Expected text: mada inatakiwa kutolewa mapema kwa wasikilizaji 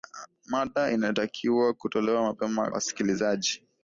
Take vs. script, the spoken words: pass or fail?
fail